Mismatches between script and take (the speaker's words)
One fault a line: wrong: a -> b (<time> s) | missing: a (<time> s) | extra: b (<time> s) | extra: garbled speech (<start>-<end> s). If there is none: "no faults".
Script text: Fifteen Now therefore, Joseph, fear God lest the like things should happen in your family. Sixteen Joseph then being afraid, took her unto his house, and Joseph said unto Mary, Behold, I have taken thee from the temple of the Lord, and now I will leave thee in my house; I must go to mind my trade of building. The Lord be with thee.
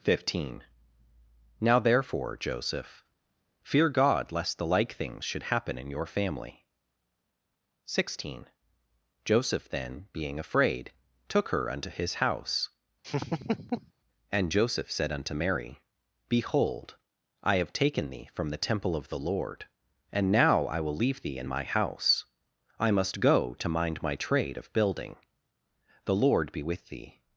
no faults